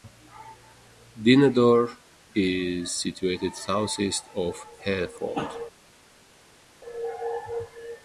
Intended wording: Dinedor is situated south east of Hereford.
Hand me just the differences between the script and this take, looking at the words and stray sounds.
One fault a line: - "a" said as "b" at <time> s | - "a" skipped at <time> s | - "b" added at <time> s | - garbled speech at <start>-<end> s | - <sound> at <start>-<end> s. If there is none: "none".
none